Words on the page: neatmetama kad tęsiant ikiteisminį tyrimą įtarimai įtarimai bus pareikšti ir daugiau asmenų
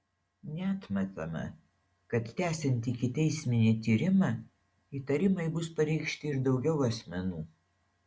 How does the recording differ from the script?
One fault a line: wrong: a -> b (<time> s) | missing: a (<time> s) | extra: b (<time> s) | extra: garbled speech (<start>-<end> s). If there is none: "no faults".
missing: įtarimai (5.5 s)